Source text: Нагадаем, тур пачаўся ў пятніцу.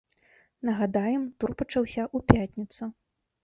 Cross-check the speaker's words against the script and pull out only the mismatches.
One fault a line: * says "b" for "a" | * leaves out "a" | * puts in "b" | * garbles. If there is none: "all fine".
all fine